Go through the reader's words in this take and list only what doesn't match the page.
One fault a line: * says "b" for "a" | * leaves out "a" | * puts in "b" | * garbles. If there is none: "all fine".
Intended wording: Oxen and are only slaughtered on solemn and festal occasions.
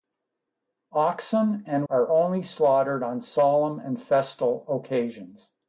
all fine